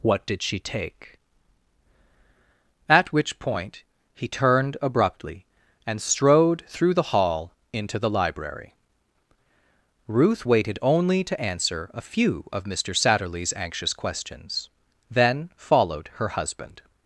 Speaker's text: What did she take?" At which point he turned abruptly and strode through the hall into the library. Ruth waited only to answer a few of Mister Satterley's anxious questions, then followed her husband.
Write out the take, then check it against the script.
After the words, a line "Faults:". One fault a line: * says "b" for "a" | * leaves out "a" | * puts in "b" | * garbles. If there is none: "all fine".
What did she take?" At which point he turned abruptly and strode through the hall into the library. Ruth waited only to answer a few of Mister Satterley's anxious questions, then followed her husband.
Faults:
all fine